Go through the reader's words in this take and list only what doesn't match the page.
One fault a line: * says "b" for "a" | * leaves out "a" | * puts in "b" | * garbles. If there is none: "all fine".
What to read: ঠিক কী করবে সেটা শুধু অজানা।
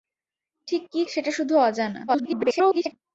* leaves out "করবে"
* garbles